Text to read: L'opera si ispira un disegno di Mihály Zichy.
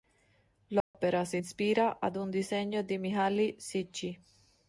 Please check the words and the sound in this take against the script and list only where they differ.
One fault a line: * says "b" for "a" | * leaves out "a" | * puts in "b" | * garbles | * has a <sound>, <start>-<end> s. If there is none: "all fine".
* has a dropout, 0.8-0.9 s
* puts in "ad"